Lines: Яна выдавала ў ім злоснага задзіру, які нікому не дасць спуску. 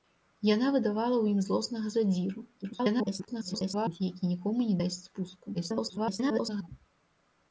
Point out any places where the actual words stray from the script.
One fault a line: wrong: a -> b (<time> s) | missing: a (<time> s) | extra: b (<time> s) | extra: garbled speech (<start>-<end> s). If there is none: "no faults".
extra: garbled speech (2.6-4.0 s)
extra: garbled speech (5.5-6.7 s)